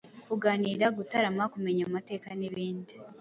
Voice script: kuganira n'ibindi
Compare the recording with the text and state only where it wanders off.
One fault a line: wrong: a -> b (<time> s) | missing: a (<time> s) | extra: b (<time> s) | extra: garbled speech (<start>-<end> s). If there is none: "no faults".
extra: gutarama kumenya amateka (1.0 s)